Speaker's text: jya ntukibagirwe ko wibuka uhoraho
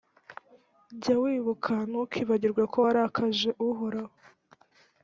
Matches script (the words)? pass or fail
fail